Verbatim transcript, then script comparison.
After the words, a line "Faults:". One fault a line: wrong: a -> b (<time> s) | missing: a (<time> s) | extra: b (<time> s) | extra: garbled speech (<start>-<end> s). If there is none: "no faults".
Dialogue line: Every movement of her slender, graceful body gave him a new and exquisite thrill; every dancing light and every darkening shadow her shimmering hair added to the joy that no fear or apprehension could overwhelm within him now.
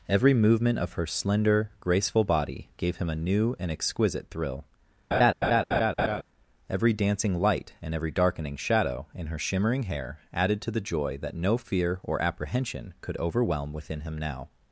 Every movement of her slender, graceful body gave him a new and exquisite thrill; every dancing light and every darkening shadow in her shimmering hair added to the joy that no fear or apprehension could overwhelm within him now.
Faults:
extra: in (9.1 s)